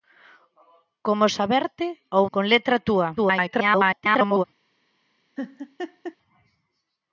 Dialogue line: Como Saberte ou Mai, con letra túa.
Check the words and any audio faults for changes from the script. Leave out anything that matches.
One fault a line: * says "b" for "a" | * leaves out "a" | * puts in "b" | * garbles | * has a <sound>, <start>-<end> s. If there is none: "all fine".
* leaves out "Mai"
* garbles
* has a laugh, 5.4-6.2 s